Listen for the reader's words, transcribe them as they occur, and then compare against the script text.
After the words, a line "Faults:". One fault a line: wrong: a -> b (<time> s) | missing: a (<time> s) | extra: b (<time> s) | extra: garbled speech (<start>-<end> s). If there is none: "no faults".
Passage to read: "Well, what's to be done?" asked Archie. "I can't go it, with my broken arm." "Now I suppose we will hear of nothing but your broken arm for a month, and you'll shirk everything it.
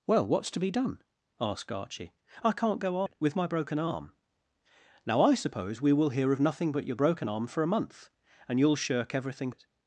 "Well, what's to be done?" asked Archie. "I can't go it, with my broken arm." "Now I suppose we will hear of nothing but your broken arm for a month, and you'll shirk everything it.
Faults:
no faults